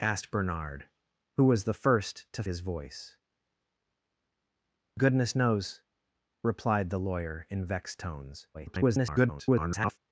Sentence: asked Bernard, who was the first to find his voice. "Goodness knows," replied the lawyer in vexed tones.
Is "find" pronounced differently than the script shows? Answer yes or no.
yes